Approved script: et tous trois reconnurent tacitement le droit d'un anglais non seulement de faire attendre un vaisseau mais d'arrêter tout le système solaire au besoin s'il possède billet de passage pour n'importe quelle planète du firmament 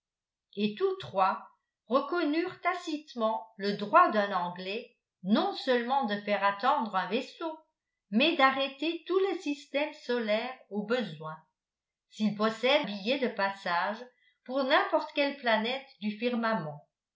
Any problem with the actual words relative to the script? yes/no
no